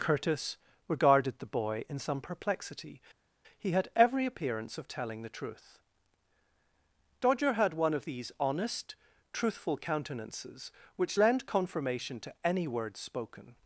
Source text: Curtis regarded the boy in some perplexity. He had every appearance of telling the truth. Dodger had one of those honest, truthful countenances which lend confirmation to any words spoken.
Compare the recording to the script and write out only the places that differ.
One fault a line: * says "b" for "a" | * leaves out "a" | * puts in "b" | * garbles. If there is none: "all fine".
* says "these" for "those"